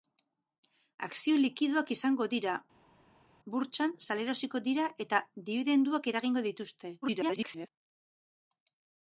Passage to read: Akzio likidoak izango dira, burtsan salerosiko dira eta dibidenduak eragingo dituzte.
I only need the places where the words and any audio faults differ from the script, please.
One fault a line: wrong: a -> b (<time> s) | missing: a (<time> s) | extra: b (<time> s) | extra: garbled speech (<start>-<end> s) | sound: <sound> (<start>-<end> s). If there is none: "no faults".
extra: garbled speech (7.0-7.7 s)